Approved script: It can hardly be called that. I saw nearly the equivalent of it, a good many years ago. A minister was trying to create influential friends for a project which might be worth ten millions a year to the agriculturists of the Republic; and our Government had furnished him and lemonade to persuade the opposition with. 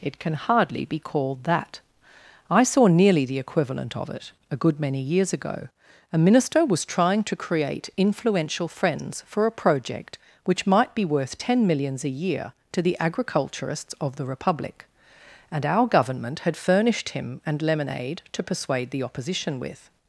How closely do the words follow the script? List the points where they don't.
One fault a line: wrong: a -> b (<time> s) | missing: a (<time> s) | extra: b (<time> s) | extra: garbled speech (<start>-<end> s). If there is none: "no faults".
no faults